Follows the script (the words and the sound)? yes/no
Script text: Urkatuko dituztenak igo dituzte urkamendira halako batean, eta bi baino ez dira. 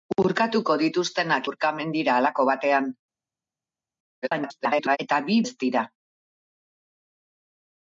no